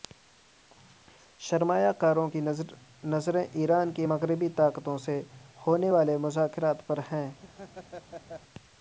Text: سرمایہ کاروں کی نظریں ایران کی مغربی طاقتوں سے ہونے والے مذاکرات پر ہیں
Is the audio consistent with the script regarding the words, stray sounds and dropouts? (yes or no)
no